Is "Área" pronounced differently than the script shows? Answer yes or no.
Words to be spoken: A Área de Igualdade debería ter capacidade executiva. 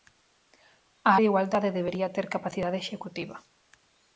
yes